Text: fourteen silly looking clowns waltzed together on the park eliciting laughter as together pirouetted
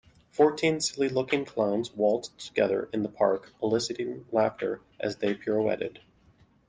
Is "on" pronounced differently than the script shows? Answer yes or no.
yes